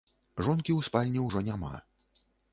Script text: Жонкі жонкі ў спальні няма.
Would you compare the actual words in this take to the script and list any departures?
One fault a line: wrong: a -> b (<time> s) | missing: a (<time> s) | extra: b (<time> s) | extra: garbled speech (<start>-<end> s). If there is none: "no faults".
missing: жонкі (0.7 s)
extra: ўжо (1.3 s)